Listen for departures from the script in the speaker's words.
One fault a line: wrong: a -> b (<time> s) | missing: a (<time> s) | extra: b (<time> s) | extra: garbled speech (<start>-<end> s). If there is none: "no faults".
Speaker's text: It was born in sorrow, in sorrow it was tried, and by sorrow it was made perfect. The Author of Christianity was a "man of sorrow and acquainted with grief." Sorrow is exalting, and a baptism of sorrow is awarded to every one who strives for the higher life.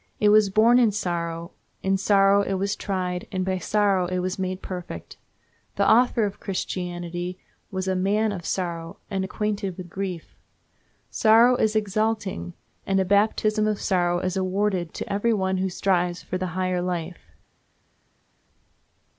no faults